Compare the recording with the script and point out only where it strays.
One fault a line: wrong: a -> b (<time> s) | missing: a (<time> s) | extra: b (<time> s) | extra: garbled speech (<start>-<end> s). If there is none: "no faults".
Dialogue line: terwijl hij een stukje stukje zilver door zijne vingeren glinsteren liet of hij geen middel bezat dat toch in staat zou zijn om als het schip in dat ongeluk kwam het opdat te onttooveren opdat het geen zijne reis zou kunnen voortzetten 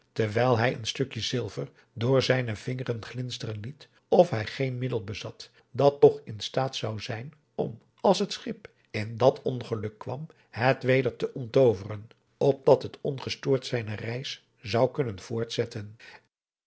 missing: stukje (1.2 s)
wrong: opdat -> weder (10.8 s)
wrong: geen -> ongestoord (13.0 s)